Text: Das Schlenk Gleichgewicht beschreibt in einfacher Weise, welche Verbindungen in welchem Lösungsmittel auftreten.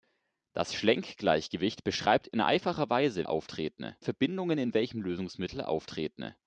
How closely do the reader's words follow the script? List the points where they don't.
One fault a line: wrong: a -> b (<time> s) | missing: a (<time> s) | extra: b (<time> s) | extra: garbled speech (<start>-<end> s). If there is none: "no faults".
wrong: welche -> auftreten (3.2 s)